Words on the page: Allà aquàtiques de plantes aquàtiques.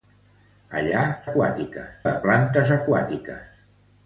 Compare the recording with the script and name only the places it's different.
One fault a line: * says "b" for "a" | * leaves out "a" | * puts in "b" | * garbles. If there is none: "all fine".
all fine